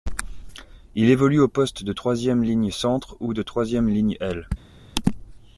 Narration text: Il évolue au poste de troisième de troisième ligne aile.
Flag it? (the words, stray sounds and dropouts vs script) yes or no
yes